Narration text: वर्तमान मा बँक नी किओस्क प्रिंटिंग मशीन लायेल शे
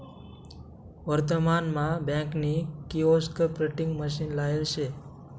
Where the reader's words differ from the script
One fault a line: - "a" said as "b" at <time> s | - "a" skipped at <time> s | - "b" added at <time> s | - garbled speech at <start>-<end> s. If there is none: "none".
none